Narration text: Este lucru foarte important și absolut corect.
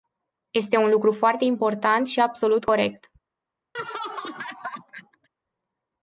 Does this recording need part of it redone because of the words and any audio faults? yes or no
yes